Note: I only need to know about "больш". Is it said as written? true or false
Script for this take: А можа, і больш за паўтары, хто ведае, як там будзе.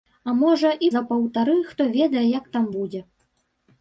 false